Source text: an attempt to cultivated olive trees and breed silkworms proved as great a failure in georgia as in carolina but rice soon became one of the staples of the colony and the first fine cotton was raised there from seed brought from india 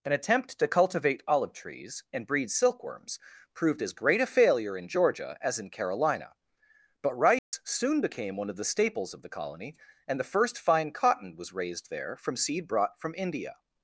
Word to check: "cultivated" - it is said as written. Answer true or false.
false